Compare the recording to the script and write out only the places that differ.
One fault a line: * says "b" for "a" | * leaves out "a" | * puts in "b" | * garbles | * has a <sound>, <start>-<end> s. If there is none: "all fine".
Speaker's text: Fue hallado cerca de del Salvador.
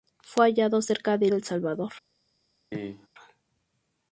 * has a cough, 2.7-3.1 s